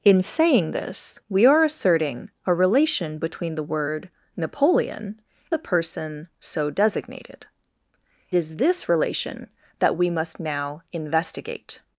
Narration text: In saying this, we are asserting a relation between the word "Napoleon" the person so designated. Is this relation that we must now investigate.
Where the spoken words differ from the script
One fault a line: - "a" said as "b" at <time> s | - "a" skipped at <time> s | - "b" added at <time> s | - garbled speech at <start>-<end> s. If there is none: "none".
none